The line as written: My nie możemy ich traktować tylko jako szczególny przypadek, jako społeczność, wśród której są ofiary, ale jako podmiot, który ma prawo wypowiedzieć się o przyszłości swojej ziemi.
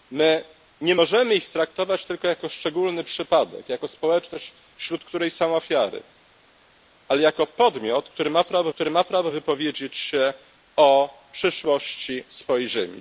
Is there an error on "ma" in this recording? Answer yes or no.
no